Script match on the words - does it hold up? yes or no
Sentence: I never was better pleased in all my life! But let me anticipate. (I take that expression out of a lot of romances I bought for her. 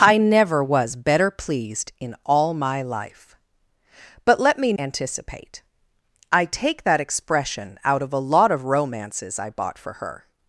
yes